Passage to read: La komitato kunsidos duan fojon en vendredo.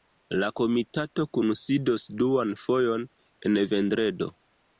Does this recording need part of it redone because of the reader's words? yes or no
no